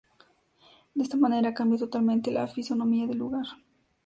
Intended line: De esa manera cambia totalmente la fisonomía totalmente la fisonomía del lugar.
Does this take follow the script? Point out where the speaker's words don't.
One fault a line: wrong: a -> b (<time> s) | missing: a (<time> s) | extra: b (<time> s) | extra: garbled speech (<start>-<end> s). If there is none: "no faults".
wrong: esa -> esta (1.0 s)
missing: totalmente la fisonomía (3.1 s)